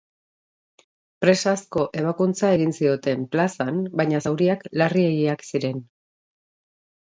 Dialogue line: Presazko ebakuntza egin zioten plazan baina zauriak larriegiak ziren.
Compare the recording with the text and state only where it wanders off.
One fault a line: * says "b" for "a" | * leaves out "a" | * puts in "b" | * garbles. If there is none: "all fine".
all fine